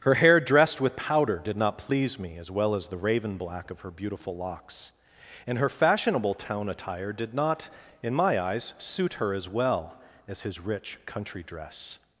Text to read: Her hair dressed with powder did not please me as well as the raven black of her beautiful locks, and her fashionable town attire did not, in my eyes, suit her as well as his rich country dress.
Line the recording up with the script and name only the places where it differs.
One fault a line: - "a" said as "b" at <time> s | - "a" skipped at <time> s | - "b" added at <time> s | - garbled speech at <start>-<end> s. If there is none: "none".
none